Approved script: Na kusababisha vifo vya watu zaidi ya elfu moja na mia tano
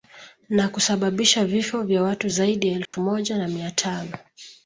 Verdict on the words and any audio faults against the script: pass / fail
fail